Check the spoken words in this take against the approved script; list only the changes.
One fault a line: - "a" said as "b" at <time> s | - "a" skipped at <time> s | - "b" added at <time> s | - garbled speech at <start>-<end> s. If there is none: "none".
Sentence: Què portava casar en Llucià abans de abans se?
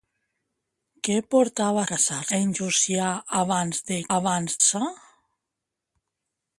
none